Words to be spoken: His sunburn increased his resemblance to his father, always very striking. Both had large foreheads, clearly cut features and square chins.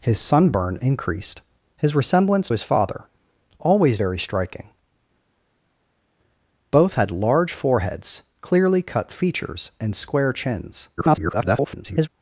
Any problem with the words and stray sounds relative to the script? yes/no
yes